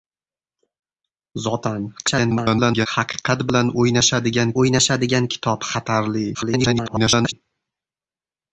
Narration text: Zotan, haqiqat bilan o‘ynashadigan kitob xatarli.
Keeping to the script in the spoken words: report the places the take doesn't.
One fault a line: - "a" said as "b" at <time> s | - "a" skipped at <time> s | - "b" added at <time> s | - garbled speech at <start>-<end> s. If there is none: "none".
- garbled speech at 2.0-2.9 s
- "o‘ynashadigan" added at 4.6 s
- garbled speech at 6.3-7.3 s